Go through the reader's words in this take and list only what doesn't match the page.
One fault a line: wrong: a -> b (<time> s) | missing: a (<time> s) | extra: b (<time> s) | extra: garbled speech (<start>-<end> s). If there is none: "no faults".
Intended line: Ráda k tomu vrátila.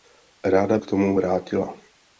no faults